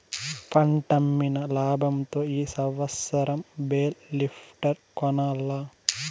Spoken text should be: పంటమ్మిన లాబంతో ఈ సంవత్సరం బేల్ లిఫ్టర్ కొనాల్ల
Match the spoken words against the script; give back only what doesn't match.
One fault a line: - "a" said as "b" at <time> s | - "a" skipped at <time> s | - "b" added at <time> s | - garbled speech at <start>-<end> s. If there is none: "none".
none